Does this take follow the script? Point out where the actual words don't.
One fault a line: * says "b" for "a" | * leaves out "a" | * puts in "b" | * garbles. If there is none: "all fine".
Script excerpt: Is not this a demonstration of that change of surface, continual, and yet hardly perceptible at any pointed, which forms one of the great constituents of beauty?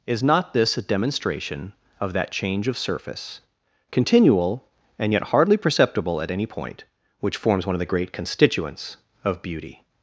* says "point" for "pointed"